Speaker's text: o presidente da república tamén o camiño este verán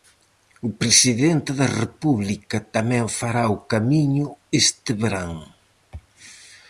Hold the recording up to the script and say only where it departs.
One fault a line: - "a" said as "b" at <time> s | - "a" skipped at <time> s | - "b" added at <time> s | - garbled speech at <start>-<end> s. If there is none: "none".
- "fará" added at 3.2 s